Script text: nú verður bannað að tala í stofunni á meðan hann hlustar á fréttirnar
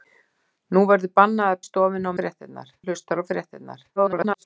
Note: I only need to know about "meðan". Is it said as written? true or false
false